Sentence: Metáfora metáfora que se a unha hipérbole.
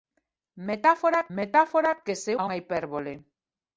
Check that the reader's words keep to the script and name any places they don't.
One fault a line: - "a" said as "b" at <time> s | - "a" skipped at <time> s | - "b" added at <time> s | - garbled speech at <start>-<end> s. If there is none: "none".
none